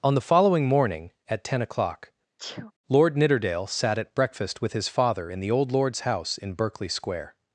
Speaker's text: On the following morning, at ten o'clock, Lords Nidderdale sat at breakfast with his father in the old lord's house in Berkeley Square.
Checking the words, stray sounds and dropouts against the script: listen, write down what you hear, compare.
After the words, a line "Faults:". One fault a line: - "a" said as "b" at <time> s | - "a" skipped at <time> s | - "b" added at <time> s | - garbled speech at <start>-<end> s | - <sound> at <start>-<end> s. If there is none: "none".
On the following morning, at ten o'clock, Lord Nidderdale sat at breakfast with his father in the old lord's house in Berkeley Square.
Faults:
- sneeze at 2.4-2.7 s
- "Lords" said as "Lord" at 2.9 s